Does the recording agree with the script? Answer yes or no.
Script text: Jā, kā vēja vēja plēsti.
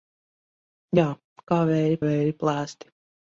yes